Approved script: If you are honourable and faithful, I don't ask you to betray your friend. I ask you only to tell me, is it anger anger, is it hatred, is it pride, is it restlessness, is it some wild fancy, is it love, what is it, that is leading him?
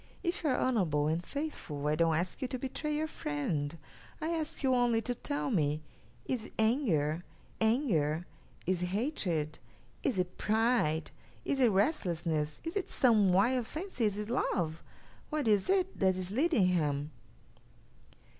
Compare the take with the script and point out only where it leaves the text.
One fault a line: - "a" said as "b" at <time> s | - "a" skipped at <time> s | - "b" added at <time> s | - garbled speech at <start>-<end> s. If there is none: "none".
none